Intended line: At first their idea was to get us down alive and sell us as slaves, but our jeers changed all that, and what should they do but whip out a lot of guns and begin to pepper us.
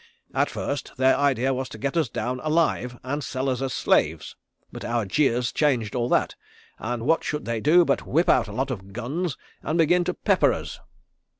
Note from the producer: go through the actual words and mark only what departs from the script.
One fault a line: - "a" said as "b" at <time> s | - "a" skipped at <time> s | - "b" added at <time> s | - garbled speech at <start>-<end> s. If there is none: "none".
none